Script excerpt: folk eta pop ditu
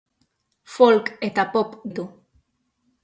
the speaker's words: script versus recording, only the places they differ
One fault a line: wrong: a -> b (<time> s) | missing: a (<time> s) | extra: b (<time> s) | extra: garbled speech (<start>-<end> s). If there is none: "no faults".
no faults